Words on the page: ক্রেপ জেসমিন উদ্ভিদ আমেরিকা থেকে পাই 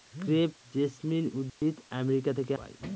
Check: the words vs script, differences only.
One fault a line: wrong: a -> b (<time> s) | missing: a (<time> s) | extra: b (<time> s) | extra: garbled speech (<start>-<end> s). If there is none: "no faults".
no faults